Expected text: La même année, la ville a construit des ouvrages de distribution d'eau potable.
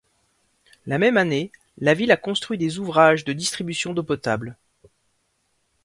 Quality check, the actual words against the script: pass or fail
pass